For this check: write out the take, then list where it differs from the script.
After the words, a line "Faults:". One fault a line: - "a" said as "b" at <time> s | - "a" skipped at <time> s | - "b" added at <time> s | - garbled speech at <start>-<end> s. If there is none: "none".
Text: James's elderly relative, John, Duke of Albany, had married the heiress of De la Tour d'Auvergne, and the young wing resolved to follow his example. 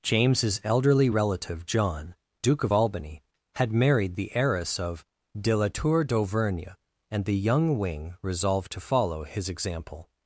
James's elderly relative, John, Duke of Albany, had married the heiress of De la Tour d'Auvergne, and the young wing resolved to follow his example.
Faults:
none